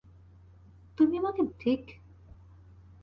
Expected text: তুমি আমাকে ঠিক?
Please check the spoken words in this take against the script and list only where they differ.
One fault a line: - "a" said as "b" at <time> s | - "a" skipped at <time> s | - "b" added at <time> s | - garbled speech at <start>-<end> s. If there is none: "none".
none